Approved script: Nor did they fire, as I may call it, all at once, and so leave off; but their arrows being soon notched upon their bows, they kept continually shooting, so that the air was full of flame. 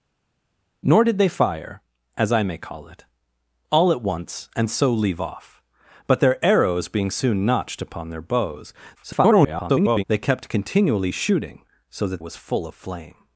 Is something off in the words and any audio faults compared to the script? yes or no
yes